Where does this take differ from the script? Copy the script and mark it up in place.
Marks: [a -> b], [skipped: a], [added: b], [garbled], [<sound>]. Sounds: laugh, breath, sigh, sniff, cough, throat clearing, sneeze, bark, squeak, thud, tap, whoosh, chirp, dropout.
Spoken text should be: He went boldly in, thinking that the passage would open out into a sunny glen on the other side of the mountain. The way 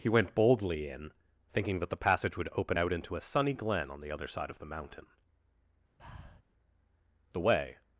He went boldly in, thinking that the passage would open out into a sunny glen on the other side of the mountain. [breath] The way